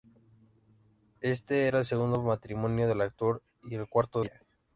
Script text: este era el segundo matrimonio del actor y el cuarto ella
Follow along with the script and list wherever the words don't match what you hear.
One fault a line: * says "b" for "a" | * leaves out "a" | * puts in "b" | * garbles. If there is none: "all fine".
all fine